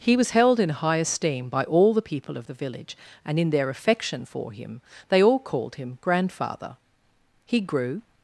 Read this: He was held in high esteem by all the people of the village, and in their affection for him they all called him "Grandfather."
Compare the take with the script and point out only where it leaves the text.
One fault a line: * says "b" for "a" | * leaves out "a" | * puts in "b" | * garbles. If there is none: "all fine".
* puts in "He grew"